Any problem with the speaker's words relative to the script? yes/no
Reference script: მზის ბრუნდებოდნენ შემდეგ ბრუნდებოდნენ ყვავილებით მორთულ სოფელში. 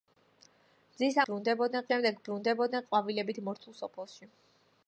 no